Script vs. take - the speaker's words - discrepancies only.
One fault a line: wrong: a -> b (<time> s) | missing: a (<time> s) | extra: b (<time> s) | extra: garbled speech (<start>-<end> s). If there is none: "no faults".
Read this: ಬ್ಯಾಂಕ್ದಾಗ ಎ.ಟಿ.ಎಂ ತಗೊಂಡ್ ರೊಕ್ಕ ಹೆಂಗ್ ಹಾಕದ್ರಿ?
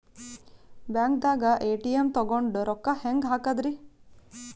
no faults